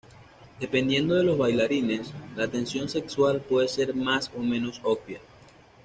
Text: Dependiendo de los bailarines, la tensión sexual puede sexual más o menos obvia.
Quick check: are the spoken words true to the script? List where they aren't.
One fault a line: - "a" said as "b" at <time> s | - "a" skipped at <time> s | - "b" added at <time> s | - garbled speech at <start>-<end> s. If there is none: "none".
- "sexual" said as "ser" at 3.7 s